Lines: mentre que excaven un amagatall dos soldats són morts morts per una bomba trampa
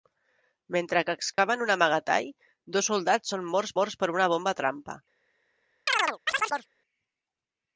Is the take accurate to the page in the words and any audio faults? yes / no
no